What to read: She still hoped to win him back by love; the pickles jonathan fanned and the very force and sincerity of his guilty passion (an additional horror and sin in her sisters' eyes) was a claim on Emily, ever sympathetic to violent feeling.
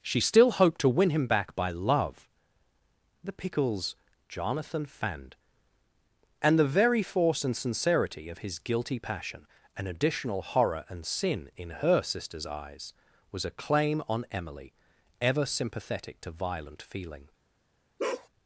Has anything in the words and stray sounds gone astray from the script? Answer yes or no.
yes